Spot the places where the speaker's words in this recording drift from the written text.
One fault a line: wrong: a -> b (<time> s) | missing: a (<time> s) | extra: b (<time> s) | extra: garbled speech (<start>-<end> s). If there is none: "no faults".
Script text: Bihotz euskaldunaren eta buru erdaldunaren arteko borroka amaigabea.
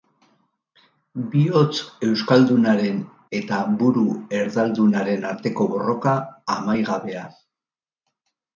no faults